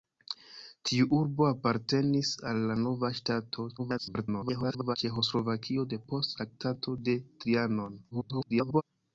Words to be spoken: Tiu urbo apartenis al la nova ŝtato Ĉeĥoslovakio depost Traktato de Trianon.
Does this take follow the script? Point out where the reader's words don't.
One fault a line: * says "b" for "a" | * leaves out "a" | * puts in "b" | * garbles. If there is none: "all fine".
* garbles
* garbles